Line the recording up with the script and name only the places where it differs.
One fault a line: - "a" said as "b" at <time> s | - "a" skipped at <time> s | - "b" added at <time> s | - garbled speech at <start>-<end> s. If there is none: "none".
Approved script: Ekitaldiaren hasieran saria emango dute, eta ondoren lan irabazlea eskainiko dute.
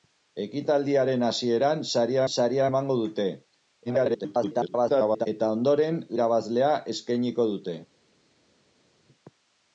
- "saria" added at 2.3 s
- garbled speech at 3.9-5.3 s
- "lan" skipped at 6.0 s